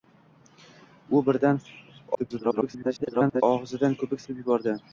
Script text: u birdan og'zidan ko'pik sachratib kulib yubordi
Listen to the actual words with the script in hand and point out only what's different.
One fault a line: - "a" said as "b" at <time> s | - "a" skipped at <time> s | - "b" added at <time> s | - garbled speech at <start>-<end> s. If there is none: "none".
- garbled speech at 2.1-3.4 s
- "sachratib" skipped at 4.3 s